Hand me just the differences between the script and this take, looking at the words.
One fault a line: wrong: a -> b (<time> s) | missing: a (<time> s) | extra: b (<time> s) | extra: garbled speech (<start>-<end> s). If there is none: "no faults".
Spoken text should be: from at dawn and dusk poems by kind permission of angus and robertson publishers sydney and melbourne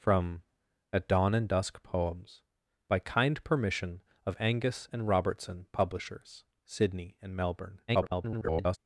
extra: garbled speech (7.9-8.8 s)